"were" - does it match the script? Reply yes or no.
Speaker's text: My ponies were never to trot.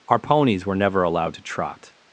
yes